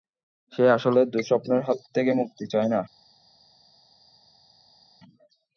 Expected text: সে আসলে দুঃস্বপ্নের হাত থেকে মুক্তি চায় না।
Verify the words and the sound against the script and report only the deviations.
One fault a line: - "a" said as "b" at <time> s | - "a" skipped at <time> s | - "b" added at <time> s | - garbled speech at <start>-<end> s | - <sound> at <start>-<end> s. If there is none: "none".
none